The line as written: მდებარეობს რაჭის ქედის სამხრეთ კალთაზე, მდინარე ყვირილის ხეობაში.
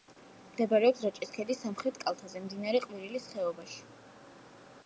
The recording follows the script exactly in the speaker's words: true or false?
true